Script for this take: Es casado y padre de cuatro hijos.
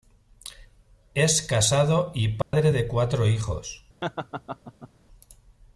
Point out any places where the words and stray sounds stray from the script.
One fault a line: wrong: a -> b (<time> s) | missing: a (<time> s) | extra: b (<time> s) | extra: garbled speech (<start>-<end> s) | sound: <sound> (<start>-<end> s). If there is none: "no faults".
sound: dropout (2.4-2.5 s)
sound: laugh (4.0-4.9 s)